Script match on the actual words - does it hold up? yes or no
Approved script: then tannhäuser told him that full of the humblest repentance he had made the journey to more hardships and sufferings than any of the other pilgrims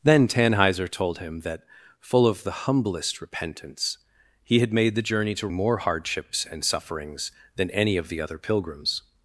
yes